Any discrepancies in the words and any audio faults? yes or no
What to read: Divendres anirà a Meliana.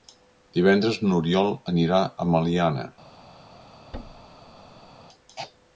yes